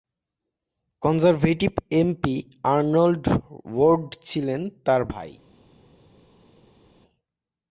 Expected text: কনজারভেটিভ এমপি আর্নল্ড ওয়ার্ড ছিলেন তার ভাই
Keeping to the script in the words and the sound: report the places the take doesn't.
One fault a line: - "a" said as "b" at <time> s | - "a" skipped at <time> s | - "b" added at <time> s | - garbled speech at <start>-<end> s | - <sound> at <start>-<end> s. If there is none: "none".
none